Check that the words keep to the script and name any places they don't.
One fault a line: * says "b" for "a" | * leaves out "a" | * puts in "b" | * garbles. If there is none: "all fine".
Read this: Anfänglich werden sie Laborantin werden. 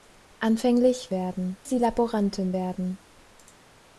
all fine